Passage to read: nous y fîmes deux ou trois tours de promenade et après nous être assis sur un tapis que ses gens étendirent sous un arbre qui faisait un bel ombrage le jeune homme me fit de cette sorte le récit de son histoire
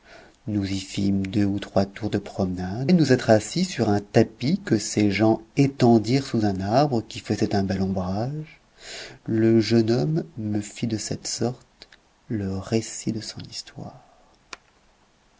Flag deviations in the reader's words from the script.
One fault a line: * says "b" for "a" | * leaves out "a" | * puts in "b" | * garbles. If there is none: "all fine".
* leaves out "et après"